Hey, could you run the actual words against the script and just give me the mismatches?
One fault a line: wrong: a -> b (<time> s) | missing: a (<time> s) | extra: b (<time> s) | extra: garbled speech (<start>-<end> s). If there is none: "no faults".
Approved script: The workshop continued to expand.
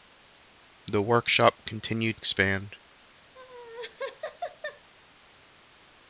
missing: to (2.2 s)